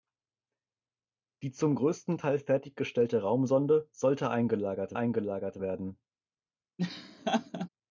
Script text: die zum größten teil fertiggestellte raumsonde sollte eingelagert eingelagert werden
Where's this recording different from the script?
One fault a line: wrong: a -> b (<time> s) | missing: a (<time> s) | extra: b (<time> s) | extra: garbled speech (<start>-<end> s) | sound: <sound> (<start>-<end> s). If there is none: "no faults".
sound: laugh (6.8-7.7 s)